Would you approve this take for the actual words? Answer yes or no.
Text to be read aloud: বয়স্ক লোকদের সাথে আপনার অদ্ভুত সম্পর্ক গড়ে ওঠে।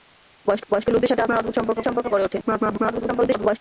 no